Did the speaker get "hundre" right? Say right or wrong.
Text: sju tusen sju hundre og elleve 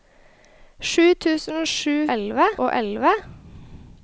wrong